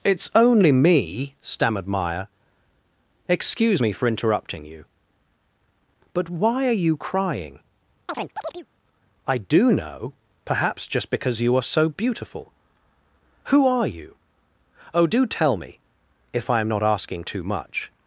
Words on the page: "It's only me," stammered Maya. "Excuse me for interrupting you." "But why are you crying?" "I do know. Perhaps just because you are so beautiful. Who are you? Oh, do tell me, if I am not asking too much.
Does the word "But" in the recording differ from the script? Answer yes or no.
no